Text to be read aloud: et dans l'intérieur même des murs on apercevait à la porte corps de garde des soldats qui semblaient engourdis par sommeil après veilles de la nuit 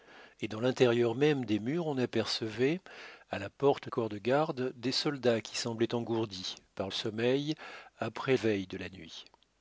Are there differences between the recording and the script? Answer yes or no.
no